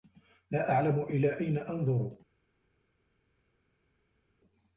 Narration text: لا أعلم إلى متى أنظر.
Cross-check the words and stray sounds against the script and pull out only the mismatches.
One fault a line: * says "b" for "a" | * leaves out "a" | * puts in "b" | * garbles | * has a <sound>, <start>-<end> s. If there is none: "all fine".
* says "أين" for "متى"